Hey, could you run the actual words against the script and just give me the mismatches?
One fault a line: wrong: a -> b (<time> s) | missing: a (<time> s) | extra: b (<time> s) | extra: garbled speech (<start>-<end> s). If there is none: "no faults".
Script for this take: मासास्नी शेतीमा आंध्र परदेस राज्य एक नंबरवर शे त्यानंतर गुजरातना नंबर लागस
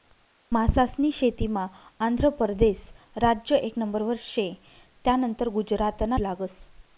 missing: नंबर (6.2 s)